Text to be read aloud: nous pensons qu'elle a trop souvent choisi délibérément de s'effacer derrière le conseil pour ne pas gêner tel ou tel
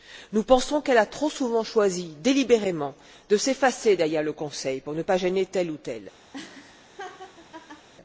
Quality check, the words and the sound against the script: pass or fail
fail